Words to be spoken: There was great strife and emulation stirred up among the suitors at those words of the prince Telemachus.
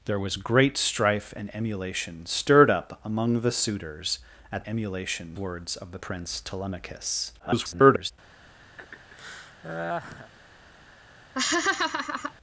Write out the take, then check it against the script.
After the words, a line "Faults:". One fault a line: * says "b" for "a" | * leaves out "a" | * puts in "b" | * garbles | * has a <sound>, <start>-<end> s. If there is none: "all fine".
There was great strife and emulation stirred up among the suitors at emulation words of the prince Telemachus. [garbled]
Faults:
* says "emulation" for "those"
* garbles
* has a laugh, 8.8-10.3 s
* has a laugh, 11.3-12.3 s